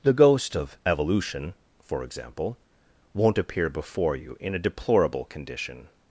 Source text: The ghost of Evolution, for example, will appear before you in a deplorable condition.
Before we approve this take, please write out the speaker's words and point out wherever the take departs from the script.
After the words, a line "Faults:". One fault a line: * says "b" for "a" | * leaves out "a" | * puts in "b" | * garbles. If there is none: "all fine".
The ghost of Evolution, for example, won't appear before you in a deplorable condition.
Faults:
* says "won't" for "will"